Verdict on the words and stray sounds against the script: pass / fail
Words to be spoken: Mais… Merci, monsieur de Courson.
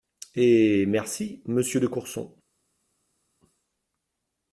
fail